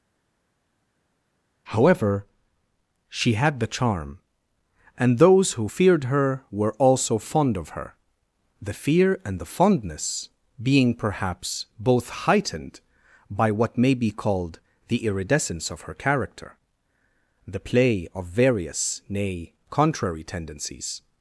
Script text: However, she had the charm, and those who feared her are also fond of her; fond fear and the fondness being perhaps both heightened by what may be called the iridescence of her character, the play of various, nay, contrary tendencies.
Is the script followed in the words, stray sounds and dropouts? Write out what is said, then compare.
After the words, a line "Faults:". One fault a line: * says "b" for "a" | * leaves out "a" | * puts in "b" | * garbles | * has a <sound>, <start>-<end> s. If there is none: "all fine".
However, she had the charm, and those who feared her were also fond of her; the fear and the fondness being perhaps both heightened by what may be called the iridescence of her character, the play of various, nay, contrary tendencies.
Faults:
* says "were" for "are"
* says "the" for "fond"